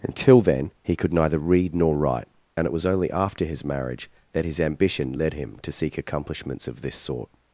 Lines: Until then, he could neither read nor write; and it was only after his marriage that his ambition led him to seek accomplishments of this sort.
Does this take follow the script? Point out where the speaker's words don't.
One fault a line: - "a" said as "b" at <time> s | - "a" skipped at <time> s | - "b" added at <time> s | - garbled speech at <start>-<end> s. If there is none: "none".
none